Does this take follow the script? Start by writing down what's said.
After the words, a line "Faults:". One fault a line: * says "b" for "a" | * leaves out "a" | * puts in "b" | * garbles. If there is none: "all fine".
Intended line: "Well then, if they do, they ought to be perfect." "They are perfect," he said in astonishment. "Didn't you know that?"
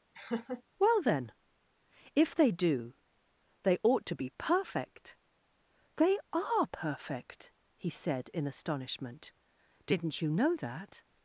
"Well then, if they do, they ought to be perfect." "They are perfect," he said in astonishment. "Didn't you know that?"
Faults:
all fine